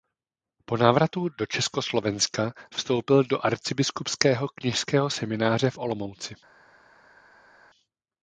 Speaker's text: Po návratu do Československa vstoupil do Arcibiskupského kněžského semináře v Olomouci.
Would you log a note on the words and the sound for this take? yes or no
no